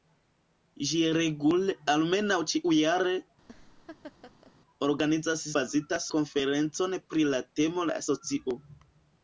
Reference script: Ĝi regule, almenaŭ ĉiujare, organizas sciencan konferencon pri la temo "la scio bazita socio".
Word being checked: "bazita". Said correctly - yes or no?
no